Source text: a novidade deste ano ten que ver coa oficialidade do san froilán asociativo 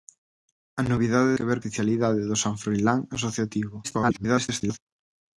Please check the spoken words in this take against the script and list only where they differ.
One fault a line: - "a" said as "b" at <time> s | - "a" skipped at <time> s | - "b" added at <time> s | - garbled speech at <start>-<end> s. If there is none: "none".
- "deste ano ten" skipped at 1.4 s
- "coa" skipped at 1.6 s
- garbled speech at 3.8-4.8 s